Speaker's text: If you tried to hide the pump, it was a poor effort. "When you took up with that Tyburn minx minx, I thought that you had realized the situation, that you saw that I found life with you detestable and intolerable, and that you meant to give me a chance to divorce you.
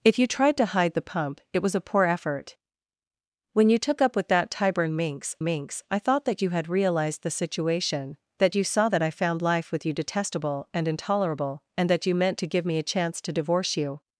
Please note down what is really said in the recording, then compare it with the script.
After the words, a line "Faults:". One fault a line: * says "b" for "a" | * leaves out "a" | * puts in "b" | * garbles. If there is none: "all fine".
If you tried to hide the pump, it was a poor effort. "When you took up with that Tyburn minx minx, I thought that you had realized the situation, that you saw that I found life with you detestable and intolerable, and that you meant to give me a chance to divorce you.
Faults:
all fine